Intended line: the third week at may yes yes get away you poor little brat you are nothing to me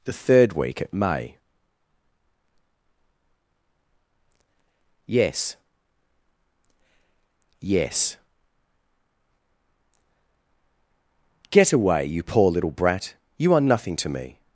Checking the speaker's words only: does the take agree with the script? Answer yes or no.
yes